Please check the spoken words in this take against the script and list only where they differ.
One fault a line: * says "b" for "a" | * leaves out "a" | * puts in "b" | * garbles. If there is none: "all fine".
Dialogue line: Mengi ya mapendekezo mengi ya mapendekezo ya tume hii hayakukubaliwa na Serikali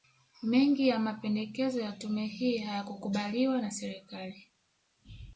* leaves out "mengi ya mapendekezo"